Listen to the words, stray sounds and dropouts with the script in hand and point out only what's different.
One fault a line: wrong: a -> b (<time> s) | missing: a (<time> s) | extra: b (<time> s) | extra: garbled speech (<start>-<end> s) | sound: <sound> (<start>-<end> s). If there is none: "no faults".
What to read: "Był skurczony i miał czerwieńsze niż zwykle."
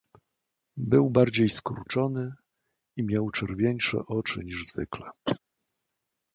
extra: bardziej (1.1 s)
extra: oczy (4.1 s)
sound: cough (5.2-5.4 s)